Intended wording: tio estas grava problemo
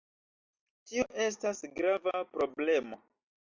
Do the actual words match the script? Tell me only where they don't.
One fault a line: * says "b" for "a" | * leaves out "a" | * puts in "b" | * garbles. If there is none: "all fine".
all fine